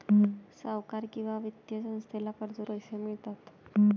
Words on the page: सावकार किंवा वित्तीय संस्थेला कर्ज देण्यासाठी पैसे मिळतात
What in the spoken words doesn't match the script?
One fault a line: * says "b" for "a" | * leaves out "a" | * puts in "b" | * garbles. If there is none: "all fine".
* leaves out "देण्यासाठी"